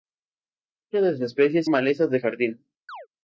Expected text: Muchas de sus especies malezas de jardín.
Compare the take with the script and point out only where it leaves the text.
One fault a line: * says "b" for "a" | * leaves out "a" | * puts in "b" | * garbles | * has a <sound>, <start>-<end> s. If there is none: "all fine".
* has a chirp, 2.9-3.1 s